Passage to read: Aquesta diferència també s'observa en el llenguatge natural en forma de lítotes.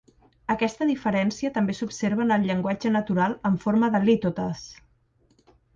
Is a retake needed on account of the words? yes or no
no